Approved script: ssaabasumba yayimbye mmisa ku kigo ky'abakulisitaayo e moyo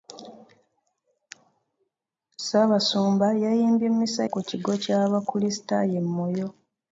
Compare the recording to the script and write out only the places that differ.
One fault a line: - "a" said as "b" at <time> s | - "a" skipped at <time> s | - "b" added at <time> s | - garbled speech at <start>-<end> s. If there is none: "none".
none